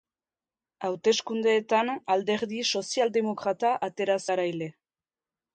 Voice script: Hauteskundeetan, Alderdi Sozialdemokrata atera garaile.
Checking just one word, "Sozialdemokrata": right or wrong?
right